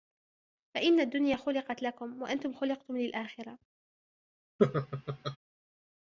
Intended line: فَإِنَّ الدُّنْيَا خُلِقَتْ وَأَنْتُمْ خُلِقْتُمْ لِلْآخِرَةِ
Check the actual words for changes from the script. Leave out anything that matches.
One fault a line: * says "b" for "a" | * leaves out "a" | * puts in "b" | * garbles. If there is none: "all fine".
* puts in "لَكُمْ"